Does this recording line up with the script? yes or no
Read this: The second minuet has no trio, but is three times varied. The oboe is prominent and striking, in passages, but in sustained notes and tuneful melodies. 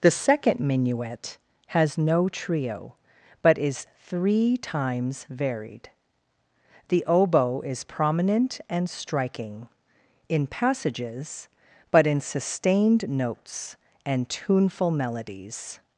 yes